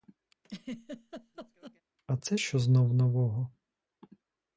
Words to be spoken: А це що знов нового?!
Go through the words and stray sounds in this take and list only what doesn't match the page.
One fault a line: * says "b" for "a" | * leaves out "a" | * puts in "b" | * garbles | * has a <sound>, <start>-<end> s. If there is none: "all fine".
* has a laugh, 0.4-1.8 s